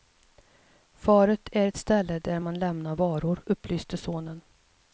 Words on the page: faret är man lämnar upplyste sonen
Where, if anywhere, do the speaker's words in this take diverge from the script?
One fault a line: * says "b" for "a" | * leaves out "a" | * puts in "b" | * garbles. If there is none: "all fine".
* puts in "ett ställe där"
* puts in "varor"